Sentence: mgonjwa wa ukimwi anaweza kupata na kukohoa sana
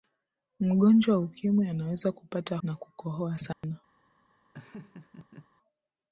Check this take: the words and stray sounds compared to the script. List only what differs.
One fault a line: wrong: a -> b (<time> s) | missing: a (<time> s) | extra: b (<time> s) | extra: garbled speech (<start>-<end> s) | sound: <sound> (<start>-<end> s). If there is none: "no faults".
sound: dropout (3.5-3.6 s)
sound: laugh (4.5-5.5 s)